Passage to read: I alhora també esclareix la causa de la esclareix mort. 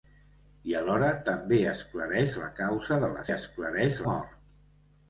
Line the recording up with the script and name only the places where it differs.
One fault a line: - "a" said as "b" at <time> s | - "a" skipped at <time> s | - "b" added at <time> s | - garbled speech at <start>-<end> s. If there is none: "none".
none